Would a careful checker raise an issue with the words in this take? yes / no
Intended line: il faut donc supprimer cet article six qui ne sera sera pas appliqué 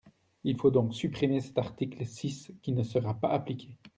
yes